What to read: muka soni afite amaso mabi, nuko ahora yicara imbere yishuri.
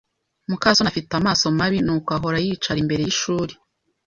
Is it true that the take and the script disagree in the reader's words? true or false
false